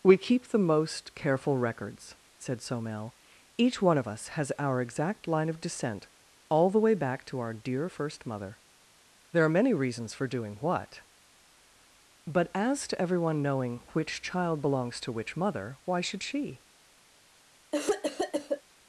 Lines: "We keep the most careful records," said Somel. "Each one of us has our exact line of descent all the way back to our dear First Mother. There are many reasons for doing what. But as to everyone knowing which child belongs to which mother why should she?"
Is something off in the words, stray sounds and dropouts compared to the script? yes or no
yes